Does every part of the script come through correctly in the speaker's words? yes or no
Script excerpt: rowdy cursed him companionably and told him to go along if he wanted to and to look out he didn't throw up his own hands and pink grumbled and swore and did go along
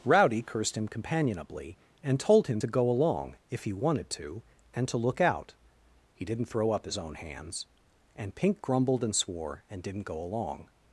no